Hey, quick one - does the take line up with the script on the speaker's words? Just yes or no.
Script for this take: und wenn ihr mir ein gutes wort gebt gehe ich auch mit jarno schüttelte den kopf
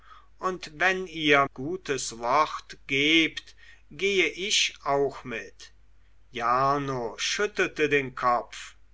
no